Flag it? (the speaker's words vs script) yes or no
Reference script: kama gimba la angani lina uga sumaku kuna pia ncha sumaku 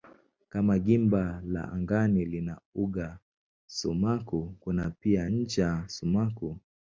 no